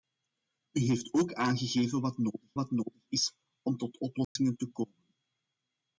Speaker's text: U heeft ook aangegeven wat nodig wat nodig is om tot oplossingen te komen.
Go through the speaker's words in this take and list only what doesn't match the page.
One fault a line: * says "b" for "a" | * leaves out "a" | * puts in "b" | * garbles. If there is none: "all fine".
all fine